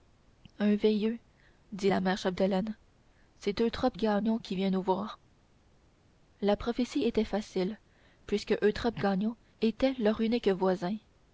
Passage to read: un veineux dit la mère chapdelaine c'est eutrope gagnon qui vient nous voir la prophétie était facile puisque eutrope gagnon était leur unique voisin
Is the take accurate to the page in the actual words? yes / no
yes